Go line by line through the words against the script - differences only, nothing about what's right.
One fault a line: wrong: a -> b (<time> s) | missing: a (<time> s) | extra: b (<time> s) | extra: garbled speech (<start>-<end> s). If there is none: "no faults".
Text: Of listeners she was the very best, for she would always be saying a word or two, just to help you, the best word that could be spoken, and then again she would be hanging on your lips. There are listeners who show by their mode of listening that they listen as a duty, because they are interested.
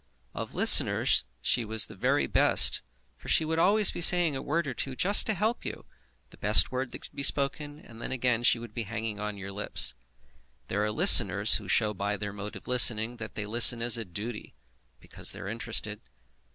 no faults